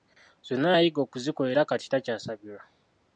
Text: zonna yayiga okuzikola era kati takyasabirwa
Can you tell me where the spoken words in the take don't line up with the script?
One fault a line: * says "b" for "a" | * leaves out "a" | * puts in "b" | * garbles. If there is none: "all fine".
all fine